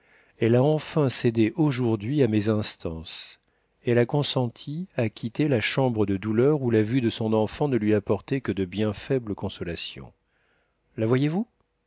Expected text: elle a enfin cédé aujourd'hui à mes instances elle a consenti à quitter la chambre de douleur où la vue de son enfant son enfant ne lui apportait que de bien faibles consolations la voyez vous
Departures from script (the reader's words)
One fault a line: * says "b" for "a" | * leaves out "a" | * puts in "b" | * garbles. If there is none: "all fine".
* leaves out "son enfant"